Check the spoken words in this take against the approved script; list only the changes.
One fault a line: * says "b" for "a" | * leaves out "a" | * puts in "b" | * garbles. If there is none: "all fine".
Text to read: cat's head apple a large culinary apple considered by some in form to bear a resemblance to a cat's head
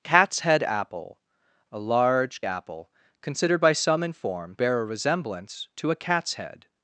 * leaves out "culinary"
* leaves out "to"